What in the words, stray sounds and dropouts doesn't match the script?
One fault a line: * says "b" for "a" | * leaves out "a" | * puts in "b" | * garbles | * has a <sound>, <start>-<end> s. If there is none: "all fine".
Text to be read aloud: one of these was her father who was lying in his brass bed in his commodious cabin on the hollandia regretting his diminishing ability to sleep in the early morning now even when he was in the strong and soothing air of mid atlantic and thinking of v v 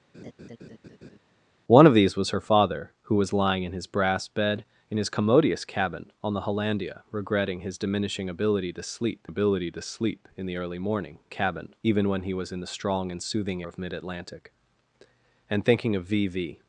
* has a laugh, 0.1-1.2 s
* puts in "ability to sleep"
* says "cabin" for "now"
* leaves out "air"